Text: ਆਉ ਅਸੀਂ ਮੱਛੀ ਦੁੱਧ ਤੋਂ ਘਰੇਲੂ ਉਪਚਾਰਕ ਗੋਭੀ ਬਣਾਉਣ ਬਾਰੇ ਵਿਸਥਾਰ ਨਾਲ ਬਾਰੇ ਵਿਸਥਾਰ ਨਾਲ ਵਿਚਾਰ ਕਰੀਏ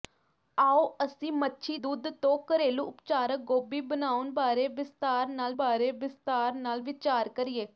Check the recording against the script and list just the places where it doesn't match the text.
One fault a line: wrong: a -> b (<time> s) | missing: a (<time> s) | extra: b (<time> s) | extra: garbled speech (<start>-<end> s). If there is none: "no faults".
no faults